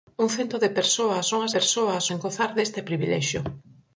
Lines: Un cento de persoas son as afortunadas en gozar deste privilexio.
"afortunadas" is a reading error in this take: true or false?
true